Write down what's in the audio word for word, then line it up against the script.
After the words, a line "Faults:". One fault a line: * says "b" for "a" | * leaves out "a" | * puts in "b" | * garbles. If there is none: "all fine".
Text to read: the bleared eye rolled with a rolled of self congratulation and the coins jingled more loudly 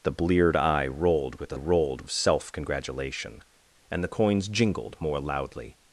the bleared eye rolled with a rolled of self congratulation and the coins jingled more loudly
Faults:
all fine